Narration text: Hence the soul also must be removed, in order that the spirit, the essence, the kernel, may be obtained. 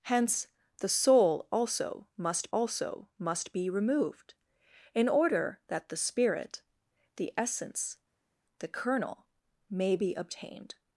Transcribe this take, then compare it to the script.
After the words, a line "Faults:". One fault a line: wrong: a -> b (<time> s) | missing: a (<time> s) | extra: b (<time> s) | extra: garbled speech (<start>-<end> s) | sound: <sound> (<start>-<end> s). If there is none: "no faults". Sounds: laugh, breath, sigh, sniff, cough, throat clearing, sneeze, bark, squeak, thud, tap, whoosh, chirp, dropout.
Hence the soul also must also must be removed, in order that the spirit, the essence, the kernel, may be obtained.
Faults:
extra: also must (2.5 s)